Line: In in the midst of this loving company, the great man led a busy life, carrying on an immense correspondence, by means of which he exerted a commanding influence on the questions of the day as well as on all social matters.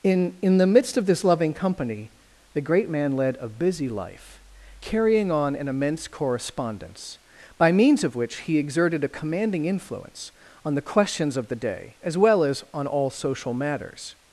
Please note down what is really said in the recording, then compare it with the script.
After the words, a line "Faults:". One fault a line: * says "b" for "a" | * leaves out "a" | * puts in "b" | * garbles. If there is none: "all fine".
In in the midst of this loving company, the great man led a busy life, carrying on an immense correspondence, by means of which he exerted a commanding influence on the questions of the day as well as on all social matters.
Faults:
all fine